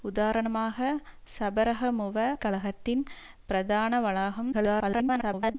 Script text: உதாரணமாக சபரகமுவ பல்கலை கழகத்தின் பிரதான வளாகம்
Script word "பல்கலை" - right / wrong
wrong